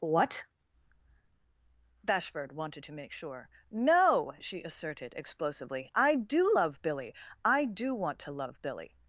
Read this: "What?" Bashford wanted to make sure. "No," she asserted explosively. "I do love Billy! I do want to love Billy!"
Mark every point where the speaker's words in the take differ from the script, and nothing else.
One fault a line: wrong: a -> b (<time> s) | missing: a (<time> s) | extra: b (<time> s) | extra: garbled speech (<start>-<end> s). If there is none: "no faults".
no faults